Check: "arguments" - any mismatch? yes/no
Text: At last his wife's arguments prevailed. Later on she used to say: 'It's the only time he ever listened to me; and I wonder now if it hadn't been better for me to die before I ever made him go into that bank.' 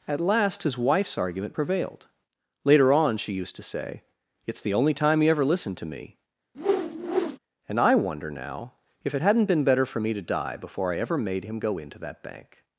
yes